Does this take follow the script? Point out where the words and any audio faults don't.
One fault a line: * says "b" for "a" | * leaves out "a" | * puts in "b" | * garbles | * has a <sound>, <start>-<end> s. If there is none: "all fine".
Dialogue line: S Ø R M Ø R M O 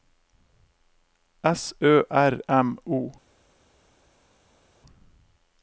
* leaves out "Ø R M"